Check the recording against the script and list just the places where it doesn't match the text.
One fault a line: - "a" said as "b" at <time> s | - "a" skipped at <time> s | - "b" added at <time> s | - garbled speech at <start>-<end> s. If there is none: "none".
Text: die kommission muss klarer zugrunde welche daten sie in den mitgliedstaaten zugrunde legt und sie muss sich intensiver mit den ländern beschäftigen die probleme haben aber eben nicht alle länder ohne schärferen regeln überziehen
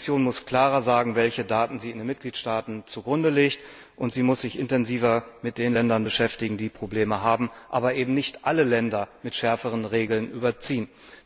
- "zugrunde" said as "sagen" at 0.8 s
- "ohne" said as "mit" at 9.2 s